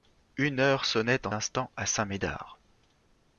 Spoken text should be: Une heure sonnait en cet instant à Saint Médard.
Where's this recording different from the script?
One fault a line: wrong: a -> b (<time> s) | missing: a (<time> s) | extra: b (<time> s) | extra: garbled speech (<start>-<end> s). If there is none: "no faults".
missing: cet (1.3 s)